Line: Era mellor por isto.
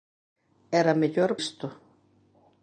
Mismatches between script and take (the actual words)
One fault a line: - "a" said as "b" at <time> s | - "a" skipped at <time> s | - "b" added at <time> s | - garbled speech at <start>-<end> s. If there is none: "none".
- "por" skipped at 1.3 s